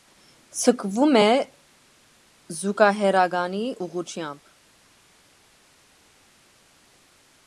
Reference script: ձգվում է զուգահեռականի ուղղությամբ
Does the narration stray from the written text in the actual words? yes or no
no